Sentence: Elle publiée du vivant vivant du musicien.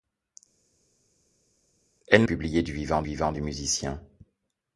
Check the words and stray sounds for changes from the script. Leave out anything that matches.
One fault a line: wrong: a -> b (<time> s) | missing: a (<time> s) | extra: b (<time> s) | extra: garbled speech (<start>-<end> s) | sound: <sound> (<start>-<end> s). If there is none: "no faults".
no faults